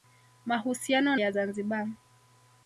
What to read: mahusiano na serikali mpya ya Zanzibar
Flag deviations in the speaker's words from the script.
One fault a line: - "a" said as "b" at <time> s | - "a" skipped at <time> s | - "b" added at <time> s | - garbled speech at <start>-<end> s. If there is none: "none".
- "na serikali mpya" skipped at 1.1 s